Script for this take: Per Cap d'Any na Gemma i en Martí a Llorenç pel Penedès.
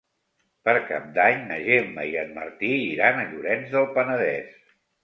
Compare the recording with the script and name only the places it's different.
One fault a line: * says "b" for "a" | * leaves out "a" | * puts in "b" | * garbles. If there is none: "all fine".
* puts in "iran"
* says "del" for "pel"